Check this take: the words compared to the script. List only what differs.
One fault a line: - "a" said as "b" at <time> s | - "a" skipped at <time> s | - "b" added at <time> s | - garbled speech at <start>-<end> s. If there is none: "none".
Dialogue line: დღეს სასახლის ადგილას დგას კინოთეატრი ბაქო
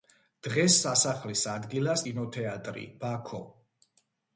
- "დგას" skipped at 2.0 s